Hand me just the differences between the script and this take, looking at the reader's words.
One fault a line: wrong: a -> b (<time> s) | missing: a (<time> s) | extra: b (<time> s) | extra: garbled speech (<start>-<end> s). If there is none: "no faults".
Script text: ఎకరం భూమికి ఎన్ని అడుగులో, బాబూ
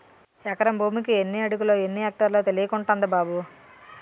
extra: ఎన్ని ఎక్టార్లో తెలియకుంటంది (1.8 s)